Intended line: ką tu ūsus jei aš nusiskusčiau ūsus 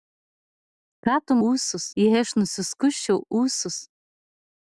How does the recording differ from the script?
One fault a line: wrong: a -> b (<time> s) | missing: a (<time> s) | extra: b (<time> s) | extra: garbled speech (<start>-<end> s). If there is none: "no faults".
no faults